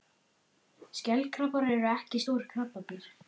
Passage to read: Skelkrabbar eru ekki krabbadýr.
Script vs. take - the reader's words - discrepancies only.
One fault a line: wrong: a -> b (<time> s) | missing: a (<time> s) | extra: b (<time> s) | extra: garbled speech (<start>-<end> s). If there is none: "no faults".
extra: stór (2.3 s)